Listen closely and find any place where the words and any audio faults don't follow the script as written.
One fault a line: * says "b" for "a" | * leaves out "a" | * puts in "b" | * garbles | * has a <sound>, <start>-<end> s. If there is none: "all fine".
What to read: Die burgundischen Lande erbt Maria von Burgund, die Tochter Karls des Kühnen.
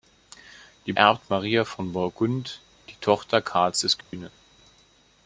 * leaves out "burgundischen Lande"
* has a dropout, 4.0-4.1 s